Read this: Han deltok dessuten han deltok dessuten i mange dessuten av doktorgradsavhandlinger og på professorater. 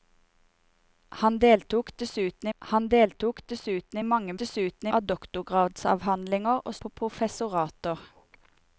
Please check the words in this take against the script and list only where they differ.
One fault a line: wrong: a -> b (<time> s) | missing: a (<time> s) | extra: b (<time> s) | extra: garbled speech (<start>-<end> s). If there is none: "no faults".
no faults